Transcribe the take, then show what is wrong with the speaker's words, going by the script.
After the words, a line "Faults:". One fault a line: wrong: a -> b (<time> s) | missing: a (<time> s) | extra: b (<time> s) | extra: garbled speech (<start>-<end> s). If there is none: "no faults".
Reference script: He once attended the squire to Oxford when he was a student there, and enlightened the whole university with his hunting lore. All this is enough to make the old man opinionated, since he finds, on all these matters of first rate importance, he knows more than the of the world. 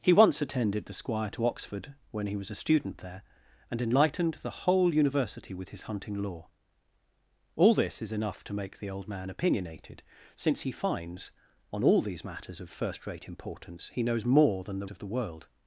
He once attended the squire to Oxford when he was a student there, and enlightened the whole university with his hunting lore. All this is enough to make the old man opinionated, since he finds, on all these matters of first rate importance, he knows more than the of the world.
Faults:
no faults